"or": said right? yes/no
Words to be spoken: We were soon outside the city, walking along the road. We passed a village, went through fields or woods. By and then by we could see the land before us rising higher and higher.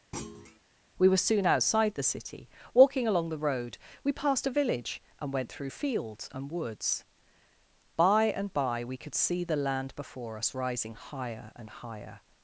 no